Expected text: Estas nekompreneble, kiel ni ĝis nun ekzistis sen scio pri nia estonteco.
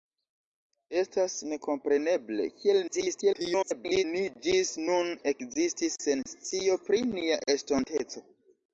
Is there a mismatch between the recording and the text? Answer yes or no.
yes